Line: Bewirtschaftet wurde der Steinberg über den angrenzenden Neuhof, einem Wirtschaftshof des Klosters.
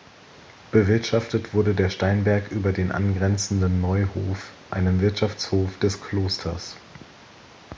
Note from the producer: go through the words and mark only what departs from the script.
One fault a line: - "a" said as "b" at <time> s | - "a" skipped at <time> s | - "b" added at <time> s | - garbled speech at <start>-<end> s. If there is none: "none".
none